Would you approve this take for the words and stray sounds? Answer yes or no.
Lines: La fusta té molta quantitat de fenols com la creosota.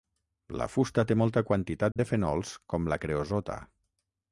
no